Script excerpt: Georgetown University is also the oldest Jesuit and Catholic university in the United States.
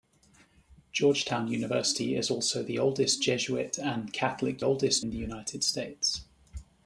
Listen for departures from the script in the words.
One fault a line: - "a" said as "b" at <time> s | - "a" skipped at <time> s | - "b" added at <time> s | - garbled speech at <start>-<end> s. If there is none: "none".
- "university" said as "oldest" at 4.6 s